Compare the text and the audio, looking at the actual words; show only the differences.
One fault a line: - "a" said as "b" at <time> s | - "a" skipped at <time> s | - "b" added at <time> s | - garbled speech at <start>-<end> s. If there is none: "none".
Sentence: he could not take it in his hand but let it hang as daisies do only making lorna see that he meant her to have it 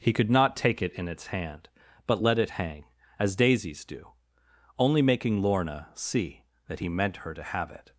- "his" said as "its" at 1.1 s